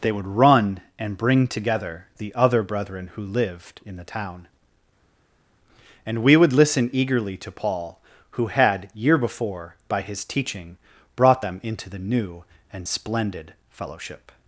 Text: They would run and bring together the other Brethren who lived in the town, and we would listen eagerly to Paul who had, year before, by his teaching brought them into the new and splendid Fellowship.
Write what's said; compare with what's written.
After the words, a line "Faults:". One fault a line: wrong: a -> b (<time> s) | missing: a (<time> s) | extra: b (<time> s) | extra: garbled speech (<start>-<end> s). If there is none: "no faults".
They would run and bring together the other Brethren who lived in the town, and we would listen eagerly to Paul who had, year before, by his teaching brought them into the new and splendid Fellowship.
Faults:
no faults